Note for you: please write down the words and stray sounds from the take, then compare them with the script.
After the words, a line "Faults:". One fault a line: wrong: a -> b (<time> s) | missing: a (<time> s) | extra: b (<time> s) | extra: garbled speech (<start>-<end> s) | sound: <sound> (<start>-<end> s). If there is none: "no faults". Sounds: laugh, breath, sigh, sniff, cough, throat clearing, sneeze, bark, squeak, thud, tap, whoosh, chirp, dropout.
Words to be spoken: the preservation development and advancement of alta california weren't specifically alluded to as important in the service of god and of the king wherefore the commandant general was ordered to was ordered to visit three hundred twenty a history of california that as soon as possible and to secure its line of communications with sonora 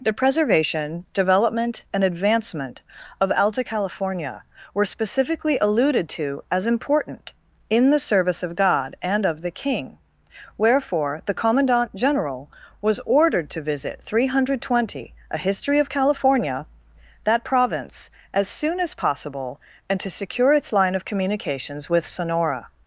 the preservation development and advancement of alta california were specifically alluded to as important in the service of god and of the king wherefore the commandant general was ordered to visit three hundred twenty a history of california that province as soon as possible and to secure its line of communications with sonora
Faults:
wrong: weren't -> were (4.7 s)
missing: was ordered to (13.6 s)
extra: province (17.4 s)